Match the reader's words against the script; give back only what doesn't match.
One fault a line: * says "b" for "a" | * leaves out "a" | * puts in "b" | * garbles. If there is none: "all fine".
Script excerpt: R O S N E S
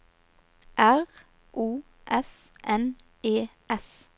all fine